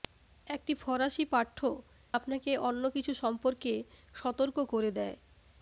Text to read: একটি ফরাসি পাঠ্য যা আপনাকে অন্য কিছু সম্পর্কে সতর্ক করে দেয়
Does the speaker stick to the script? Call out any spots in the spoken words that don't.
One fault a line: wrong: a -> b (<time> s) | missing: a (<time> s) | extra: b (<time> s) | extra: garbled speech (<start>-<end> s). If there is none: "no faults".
missing: যা (1.6 s)